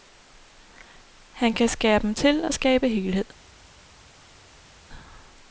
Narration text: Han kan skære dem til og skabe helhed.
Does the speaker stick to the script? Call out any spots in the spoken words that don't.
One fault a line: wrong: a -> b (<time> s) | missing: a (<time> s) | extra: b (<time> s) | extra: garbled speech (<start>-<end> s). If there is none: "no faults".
no faults